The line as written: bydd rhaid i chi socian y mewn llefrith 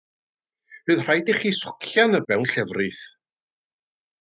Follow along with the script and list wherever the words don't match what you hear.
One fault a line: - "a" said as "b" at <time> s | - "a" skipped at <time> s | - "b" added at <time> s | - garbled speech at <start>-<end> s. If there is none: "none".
none